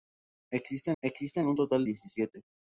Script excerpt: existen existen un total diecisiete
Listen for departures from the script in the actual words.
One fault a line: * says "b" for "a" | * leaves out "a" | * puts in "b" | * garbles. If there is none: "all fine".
all fine